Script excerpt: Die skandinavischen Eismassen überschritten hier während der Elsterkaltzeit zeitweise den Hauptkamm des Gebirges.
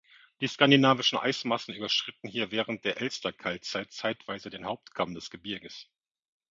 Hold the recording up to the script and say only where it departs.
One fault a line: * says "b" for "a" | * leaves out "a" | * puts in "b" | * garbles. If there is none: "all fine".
all fine